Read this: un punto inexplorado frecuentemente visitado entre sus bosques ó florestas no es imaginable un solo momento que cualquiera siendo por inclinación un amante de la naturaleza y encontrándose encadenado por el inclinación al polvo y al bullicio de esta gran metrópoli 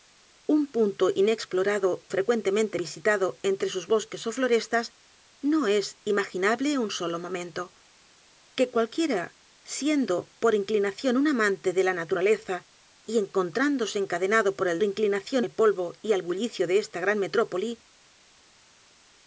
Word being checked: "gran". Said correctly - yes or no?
yes